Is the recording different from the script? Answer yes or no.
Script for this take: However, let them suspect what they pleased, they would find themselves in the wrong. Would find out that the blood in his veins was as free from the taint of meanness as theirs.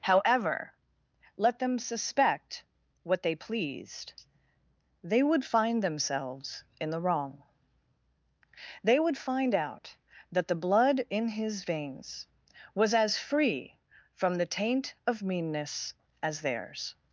yes